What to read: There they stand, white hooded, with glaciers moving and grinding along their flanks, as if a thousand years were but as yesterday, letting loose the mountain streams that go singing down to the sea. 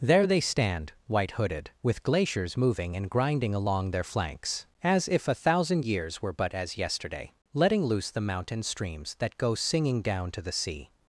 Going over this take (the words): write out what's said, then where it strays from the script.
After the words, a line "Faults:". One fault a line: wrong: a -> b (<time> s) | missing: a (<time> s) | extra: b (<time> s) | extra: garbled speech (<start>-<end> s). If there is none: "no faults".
There they stand, white hooded, with glaciers moving and grinding along their flanks, as if a thousand years were but as yesterday, letting loose the mountain streams that go singing down to the sea.
Faults:
no faults